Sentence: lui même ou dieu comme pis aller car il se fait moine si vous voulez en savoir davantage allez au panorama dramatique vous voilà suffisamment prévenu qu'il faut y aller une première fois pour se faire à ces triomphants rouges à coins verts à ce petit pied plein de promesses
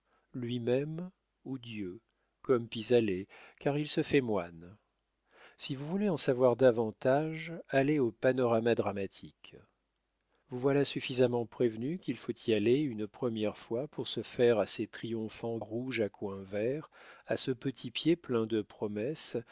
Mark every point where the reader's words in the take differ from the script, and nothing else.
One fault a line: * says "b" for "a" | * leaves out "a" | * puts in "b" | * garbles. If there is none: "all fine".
all fine